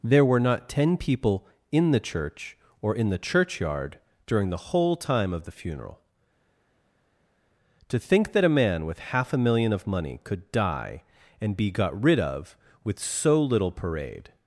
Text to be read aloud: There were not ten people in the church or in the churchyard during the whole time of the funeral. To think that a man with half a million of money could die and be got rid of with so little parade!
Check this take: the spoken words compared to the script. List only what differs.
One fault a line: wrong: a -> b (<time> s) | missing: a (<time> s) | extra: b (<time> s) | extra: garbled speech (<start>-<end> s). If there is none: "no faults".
no faults